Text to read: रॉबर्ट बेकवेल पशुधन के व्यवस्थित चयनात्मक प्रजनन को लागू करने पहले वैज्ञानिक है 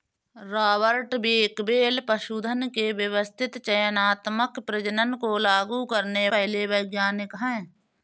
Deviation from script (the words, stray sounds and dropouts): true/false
false